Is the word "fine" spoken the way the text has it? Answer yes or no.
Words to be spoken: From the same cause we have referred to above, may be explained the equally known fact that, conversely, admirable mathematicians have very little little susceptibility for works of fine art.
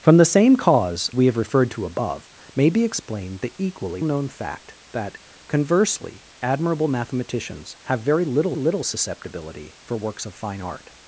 yes